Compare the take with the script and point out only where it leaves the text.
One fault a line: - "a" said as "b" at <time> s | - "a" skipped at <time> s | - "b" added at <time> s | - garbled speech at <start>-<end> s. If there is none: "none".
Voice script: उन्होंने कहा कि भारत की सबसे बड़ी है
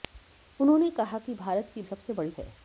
none